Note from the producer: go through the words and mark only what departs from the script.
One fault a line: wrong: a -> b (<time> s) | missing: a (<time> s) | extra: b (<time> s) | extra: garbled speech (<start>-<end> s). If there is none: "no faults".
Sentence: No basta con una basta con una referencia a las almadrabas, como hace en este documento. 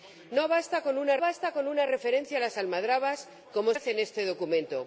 no faults